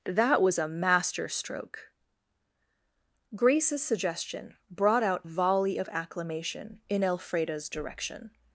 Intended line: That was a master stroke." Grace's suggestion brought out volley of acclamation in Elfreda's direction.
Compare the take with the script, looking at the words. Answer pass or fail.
pass